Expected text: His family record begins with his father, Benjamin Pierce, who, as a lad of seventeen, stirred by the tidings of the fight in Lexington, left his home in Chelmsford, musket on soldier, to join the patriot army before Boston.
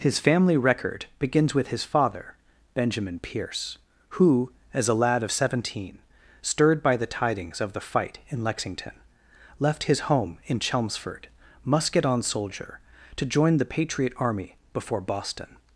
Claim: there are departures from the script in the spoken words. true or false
false